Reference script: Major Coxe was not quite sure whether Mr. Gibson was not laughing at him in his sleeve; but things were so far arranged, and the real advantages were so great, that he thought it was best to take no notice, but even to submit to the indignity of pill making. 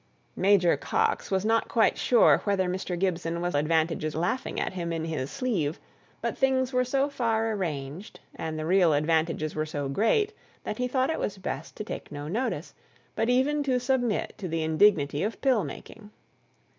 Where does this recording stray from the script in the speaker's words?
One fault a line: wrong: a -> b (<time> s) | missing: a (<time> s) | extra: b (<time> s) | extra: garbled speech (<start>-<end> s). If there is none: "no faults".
wrong: not -> advantages (3.6 s)